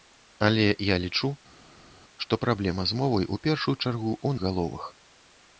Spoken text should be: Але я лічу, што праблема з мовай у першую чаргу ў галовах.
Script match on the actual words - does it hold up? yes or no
yes